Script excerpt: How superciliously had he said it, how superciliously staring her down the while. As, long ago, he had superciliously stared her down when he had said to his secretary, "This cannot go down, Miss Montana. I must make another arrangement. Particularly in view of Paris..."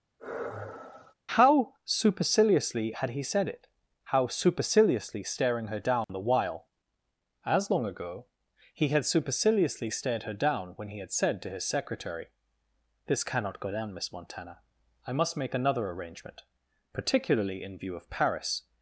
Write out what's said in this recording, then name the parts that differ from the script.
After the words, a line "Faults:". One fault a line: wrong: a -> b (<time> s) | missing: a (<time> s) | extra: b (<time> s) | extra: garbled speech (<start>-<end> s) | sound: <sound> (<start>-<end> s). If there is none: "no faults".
How superciliously had he said it, how superciliously staring her down the while. As, long ago, he had superciliously stared her down when he had said to his secretary, "This cannot go down, Miss Montana. I must make another arrangement. Particularly in view of Paris..."
Faults:
sound: sigh (0.2-1.1 s)
sound: dropout (6.0-6.1 s)